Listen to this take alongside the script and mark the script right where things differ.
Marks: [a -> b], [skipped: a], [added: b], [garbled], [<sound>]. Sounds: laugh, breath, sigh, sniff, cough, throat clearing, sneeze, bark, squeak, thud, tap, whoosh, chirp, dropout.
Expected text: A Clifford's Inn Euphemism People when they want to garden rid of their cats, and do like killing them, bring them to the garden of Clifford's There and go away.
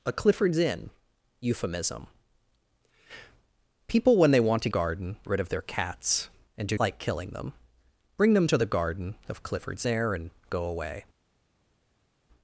A Clifford's Inn Euphemism People when they want to garden rid of their cats, and do like killing them, bring them to the garden of Clifford's There and go away.